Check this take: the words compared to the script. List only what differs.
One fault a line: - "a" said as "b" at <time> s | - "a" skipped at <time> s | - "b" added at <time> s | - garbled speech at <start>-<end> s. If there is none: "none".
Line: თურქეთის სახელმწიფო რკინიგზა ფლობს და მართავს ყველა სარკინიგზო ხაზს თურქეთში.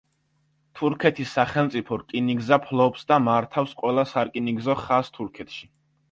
none